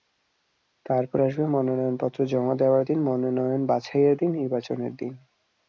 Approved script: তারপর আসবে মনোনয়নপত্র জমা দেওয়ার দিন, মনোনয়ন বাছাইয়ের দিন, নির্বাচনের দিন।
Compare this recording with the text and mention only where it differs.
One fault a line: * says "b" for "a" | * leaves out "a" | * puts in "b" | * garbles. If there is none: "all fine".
all fine